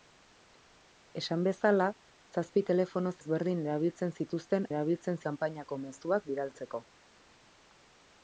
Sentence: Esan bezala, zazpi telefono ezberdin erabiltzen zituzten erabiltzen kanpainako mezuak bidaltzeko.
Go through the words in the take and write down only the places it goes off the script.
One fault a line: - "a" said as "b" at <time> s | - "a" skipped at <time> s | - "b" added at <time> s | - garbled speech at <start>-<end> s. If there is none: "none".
none